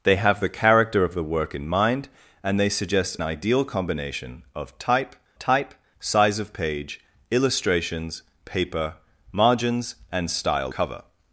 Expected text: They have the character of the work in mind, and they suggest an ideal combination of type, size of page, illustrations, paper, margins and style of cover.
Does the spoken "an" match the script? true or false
false